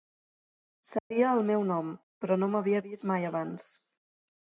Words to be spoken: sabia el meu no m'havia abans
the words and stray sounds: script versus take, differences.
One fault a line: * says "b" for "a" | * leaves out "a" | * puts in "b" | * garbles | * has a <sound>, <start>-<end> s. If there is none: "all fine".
* has a dropout, 1.0-1.1 s
* puts in "nom però"
* puts in "vist mai"